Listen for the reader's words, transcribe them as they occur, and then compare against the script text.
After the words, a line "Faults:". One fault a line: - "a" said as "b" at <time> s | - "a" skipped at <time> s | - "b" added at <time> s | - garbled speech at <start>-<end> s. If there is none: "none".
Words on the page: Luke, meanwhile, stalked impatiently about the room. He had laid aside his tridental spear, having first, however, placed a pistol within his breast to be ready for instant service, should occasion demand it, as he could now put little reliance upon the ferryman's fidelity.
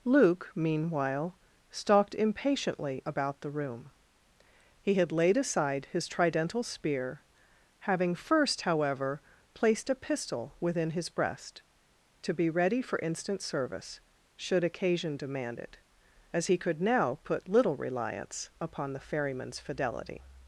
Luke, meanwhile, stalked impatiently about the room. He had laid aside his tridental spear, having first, however, placed a pistol within his breast to be ready for instant service, should occasion demand it, as he could now put little reliance upon the ferryman's fidelity.
Faults:
none